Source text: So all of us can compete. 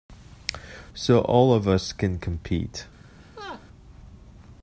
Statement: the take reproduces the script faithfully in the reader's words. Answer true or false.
true